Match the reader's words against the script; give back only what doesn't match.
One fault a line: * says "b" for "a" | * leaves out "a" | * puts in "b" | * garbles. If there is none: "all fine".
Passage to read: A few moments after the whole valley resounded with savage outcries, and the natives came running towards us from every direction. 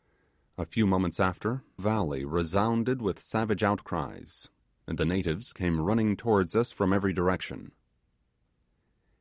* leaves out "the whole"